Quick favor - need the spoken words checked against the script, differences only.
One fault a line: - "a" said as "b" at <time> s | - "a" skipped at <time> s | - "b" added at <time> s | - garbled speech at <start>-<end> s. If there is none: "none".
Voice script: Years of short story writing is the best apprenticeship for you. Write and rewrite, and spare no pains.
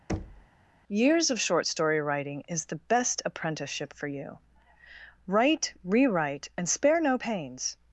- "and" skipped at 5.7 s